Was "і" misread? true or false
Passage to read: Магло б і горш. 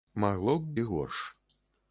false